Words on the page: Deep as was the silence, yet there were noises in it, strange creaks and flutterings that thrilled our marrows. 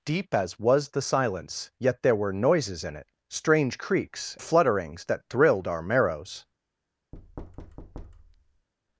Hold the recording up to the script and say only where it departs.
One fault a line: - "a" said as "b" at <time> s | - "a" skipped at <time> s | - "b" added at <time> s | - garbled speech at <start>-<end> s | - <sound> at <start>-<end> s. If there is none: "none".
- "and" skipped at 4.4 s
- thud at 7.1-8.7 s